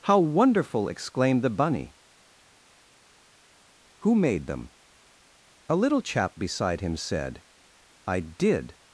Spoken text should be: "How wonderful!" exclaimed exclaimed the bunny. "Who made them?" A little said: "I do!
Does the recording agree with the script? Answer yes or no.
no